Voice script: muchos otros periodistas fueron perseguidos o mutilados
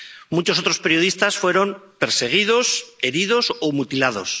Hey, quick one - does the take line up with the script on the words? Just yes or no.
no